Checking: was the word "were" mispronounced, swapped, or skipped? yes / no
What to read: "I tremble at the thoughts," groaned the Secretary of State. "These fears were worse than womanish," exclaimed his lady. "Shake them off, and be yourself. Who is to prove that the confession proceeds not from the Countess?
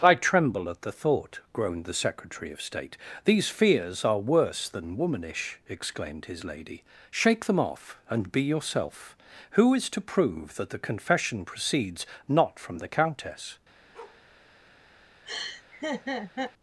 yes